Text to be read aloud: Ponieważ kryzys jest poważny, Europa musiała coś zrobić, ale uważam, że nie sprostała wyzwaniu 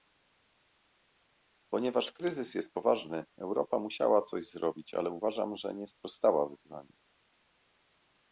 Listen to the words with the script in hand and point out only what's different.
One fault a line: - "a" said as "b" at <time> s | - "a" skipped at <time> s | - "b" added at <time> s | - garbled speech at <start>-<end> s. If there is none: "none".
none